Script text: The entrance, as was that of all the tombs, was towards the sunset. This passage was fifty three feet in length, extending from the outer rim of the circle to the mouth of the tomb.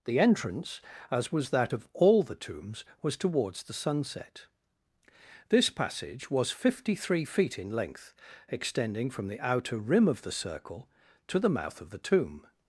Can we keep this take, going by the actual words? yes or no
yes